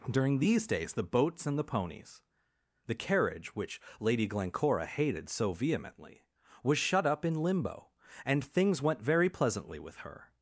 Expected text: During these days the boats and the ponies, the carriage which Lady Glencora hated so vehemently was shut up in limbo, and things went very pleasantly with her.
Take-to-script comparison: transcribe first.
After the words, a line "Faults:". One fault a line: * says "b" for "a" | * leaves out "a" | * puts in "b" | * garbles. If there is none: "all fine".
During these days the boats and the ponies, the carriage which Lady Glencora hated so vehemently was shut up in limbo, and things went very pleasantly with her.
Faults:
all fine